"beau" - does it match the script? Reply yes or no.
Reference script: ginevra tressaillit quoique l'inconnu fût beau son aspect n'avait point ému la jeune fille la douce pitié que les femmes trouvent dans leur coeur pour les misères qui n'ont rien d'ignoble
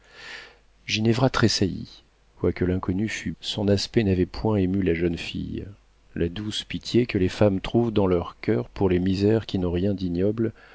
no